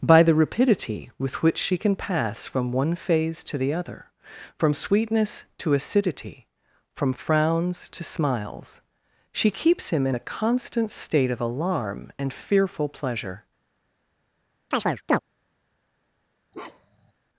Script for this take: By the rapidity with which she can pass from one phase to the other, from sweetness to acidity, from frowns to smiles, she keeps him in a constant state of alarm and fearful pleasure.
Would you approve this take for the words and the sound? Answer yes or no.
no